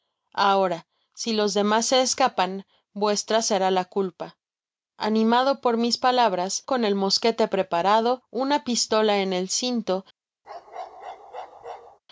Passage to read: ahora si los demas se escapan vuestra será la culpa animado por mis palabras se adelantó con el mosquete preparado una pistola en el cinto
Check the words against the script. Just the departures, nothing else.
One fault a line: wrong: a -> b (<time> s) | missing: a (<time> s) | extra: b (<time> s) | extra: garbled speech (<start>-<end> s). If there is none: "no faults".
missing: se adelantó (6.7 s)